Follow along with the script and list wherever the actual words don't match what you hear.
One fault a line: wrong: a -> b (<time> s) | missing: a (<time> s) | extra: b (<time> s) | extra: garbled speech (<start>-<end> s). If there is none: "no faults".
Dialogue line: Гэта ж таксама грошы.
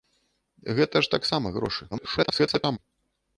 extra: garbled speech (1.9-2.8 s)